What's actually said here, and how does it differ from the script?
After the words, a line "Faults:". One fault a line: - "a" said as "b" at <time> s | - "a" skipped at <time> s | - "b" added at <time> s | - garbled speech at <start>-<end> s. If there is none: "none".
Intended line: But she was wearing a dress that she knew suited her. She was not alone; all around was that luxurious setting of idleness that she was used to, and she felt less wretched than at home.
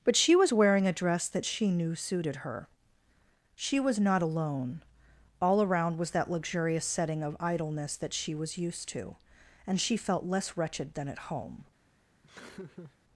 But she was wearing a dress that she knew suited her. She was not alone; all around was that luxurious setting of idleness that she was used to, and she felt less wretched than at home.
Faults:
none